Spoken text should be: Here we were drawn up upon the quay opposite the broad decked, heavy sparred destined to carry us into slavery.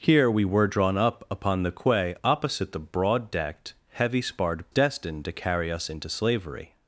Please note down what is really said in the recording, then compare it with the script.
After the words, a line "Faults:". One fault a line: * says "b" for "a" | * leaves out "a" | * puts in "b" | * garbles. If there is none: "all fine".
Here we were drawn up upon the quay opposite the broad decked, heavy sparred destined to carry us into slavery.
Faults:
all fine